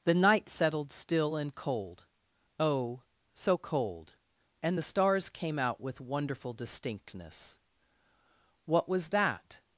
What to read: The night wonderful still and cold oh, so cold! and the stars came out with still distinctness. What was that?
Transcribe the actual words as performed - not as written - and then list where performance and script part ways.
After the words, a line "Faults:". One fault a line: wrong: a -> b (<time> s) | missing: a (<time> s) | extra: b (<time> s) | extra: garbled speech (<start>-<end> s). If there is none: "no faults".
The night settled still and cold oh, so cold! and the stars came out with wonderful distinctness. What was that?
Faults:
wrong: wonderful -> settled (0.5 s)
wrong: still -> wonderful (6.0 s)